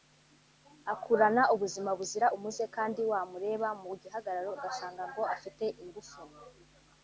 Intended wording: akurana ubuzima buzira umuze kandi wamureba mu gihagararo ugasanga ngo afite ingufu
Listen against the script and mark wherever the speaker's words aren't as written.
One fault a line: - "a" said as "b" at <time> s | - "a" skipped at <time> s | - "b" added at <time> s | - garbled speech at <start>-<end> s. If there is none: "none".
none